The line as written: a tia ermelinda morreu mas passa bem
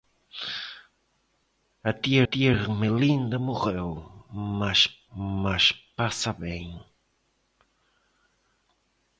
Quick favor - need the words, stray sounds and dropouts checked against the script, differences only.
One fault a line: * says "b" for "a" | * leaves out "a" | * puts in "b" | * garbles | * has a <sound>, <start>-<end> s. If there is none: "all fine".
* puts in "tia"
* puts in "mas"